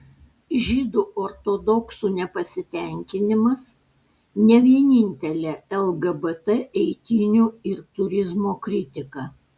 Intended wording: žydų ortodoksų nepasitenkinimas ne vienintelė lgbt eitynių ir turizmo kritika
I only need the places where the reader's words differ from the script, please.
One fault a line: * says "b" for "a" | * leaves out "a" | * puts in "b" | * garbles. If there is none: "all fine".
all fine